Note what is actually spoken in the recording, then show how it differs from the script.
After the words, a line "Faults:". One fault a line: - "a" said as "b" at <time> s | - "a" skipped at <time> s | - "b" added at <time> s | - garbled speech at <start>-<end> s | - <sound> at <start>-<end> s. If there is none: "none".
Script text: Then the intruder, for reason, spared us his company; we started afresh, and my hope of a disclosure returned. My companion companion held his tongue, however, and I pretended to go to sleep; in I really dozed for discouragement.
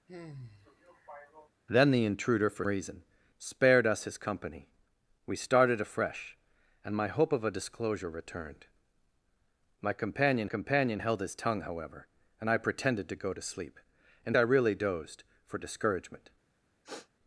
Then the intruder, for reason, spared us his company; we started afresh, and my hope of a disclosure returned. My companion companion held his tongue, however, and I pretended to go to sleep; in I really dozed for discouragement.
Faults:
- sigh at 0.1-1.5 s
- sniff at 16.8-17.1 s